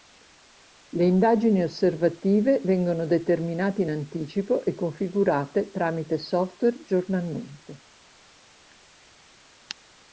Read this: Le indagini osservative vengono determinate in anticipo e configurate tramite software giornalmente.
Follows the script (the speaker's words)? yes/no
yes